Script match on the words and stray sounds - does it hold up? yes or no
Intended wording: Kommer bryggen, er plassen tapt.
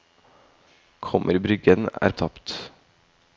no